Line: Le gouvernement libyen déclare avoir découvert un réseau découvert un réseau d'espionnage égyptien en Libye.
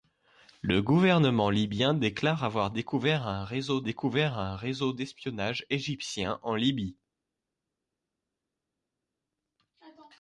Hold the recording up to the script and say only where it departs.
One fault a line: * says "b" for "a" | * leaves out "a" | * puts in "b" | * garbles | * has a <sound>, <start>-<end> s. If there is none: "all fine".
all fine